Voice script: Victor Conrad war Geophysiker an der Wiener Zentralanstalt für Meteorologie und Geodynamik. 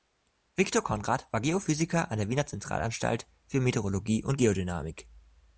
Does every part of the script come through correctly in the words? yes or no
yes